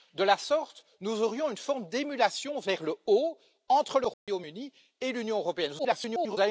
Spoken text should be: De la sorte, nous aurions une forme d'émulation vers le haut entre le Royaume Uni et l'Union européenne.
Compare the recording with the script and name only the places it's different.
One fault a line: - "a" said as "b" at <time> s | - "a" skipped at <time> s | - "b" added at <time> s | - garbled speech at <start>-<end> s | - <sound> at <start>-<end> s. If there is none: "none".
- dropout at 4.1-4.3 s
- garbled speech at 5.8-6.4 s